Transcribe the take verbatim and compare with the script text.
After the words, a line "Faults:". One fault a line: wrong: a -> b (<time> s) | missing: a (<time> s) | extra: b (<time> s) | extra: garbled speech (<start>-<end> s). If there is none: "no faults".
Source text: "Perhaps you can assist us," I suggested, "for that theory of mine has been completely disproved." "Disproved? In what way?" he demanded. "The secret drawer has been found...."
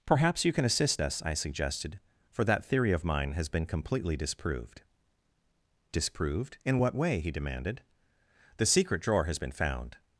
"Perhaps you can assist us," I suggested, "for that theory of mine has been completely disproved." "Disproved? In what way?" he demanded. "The secret drawer has been found...."
Faults:
no faults